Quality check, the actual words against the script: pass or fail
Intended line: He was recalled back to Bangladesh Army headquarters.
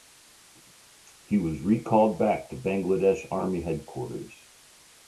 pass